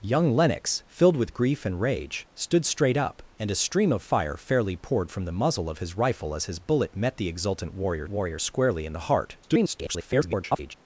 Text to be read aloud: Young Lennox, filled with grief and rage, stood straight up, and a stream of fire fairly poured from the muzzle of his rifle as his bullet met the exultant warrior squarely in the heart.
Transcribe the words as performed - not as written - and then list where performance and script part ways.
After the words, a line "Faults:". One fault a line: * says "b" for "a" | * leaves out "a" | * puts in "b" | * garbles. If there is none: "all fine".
Young Lennox, filled with grief and rage, stood straight up, and a stream of fire fairly poured from the muzzle of his rifle as his bullet met the exultant warrior warrior squarely in the heart. [garbled]
Faults:
* puts in "warrior"
* garbles